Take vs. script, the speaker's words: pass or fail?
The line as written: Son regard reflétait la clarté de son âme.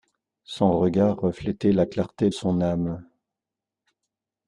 fail